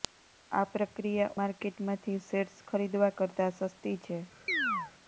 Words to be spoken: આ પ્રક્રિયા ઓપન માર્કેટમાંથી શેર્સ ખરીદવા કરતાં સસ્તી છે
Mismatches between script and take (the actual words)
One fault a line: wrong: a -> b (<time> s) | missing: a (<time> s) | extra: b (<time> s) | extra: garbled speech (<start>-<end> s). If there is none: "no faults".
missing: ઓપન (1.4 s)